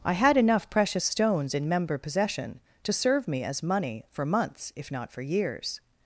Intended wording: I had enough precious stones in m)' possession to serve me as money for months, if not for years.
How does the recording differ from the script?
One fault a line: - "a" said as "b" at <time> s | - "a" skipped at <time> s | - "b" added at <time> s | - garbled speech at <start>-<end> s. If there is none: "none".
- "m" said as "member" at 1.7 s